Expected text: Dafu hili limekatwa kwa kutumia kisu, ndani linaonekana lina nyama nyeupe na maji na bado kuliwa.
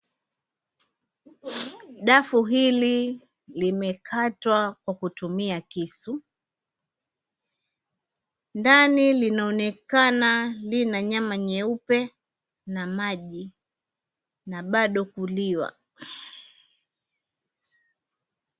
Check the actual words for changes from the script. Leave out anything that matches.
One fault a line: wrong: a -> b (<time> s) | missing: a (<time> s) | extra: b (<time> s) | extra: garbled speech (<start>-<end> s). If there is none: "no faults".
no faults